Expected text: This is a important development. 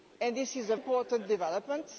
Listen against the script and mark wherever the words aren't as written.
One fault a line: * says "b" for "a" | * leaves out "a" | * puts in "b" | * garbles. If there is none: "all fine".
all fine